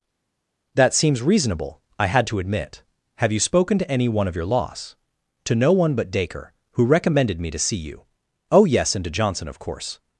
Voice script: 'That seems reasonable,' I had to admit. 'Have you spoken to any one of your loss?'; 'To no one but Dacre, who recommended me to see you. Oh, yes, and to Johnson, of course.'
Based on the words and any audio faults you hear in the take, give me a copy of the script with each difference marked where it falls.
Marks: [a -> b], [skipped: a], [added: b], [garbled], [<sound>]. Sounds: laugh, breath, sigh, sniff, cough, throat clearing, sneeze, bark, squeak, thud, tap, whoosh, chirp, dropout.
'That seems reasonable,' I had to admit. 'Have you spoken to any one of your loss?'; 'To no one but Dacre, who recommended me to see you. Oh, yes, and to Johnson, of course.'